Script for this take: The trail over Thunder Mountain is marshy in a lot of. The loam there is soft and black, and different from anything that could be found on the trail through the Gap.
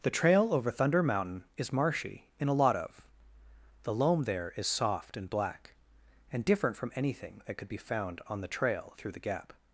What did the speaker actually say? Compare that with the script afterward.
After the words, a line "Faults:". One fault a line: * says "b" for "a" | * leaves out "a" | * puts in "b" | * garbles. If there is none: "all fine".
The trail over Thunder Mountain is marshy in a lot of. The loam there is soft and black, and different from anything that could be found on the trail through the Gap.
Faults:
all fine